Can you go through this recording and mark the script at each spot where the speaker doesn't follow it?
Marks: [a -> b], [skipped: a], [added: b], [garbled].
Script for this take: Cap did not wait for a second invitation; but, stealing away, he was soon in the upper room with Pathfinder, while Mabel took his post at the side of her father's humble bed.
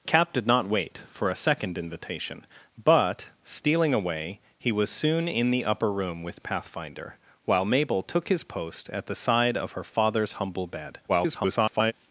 Cap did not wait for a second invitation; but, stealing away, he was soon in the upper room with Pathfinder, while Mabel took his post at the side of her father's humble bed. [garbled]